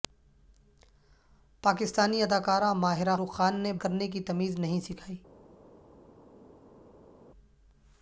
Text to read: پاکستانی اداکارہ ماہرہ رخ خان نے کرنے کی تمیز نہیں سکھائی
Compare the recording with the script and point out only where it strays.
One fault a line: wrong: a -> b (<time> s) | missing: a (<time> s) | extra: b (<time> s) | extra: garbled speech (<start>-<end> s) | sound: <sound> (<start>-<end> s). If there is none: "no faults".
no faults